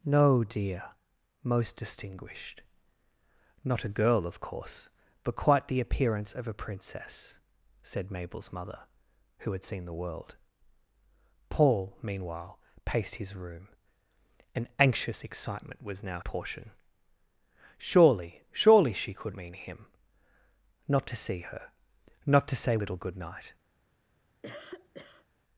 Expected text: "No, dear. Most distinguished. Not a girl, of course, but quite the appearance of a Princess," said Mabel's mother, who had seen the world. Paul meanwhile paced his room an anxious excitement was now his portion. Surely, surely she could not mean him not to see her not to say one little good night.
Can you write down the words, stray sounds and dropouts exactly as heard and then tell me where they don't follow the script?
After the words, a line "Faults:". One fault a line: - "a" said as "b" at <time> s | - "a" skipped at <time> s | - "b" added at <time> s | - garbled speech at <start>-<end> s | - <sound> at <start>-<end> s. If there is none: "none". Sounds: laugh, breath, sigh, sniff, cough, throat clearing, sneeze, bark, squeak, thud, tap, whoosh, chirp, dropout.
"No, dear. Most distinguished. Not a girl, of course, but quite the appearance of a Princess," said Mabel's mother, who had seen the world. Paul meanwhile paced his room an anxious excitement was now portion. Surely, surely she could mean him not to see her not to say little good night.
Faults:
- "his" skipped at 16.2 s
- "not" skipped at 19.4 s
- "one" skipped at 22.8 s
- cough at 24.4-25.3 s